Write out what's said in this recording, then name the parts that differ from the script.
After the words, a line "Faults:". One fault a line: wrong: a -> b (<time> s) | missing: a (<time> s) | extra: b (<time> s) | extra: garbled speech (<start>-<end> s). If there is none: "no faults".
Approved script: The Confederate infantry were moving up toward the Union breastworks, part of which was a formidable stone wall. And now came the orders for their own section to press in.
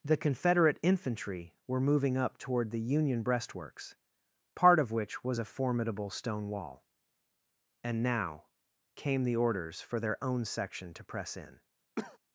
The Confederate infantry were moving up toward the Union breastworks, part of which was a formidable stone wall. And now came the orders for their own section to press in.
Faults:
no faults